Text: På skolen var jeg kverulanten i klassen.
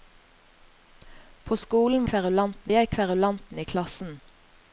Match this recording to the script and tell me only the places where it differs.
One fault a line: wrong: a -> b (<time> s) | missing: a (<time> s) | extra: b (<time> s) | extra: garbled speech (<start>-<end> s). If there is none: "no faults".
wrong: var -> kverulanten (2.0 s)